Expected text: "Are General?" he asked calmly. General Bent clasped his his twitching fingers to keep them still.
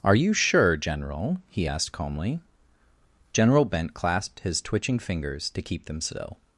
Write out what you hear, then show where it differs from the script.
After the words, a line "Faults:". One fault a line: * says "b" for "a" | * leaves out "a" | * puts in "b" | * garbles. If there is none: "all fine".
"Are you sure, General?" he asked calmly. General Bent clasped his twitching fingers to keep them still.
Faults:
* puts in "you sure"
* leaves out "his"